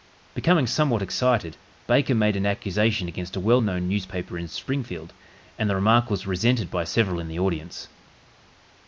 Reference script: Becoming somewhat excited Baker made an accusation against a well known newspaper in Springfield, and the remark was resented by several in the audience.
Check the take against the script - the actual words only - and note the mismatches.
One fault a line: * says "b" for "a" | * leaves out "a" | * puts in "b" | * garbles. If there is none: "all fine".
all fine